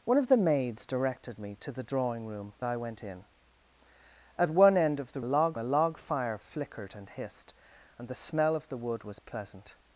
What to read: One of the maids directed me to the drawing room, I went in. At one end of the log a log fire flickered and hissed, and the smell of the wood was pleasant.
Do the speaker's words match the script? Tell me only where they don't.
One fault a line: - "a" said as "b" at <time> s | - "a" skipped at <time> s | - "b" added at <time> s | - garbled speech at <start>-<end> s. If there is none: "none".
none